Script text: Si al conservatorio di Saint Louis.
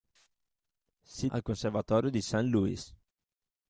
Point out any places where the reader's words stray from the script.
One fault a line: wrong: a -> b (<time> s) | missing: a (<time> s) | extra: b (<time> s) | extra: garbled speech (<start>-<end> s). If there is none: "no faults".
no faults